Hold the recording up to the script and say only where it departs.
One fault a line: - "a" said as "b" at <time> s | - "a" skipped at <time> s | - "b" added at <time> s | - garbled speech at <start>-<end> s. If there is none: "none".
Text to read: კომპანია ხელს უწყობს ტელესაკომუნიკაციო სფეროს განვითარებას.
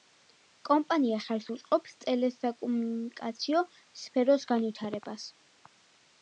none